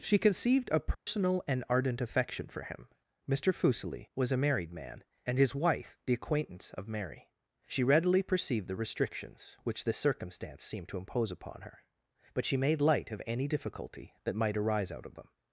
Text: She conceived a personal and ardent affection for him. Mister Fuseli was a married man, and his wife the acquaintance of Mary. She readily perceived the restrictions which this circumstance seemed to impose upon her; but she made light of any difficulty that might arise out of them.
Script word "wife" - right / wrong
right